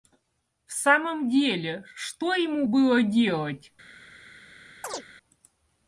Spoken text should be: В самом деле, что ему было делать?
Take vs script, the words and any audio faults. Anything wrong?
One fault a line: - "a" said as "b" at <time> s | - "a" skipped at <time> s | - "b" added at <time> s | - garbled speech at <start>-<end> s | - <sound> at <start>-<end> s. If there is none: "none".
- chirp at 4.8-5.1 s